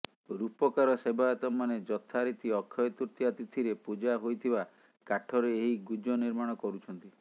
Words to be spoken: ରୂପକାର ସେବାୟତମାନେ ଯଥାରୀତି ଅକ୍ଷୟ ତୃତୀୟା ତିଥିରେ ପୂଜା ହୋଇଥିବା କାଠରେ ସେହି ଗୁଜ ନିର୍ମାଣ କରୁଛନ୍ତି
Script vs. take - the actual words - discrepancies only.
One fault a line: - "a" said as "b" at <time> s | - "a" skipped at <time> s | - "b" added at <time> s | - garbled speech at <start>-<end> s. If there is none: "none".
- "ସେହି" said as "ଏହି" at 5.6 s